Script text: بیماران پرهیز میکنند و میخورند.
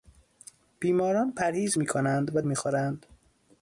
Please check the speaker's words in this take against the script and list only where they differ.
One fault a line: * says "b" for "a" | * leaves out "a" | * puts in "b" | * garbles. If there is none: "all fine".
all fine